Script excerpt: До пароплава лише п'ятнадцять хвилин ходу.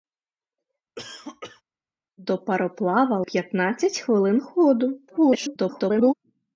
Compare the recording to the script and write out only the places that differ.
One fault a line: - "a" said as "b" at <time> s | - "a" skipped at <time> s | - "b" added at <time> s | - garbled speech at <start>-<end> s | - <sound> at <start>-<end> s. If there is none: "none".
- cough at 1.0-1.6 s
- "лише" skipped at 3.3 s
- garbled speech at 5.1-6.1 s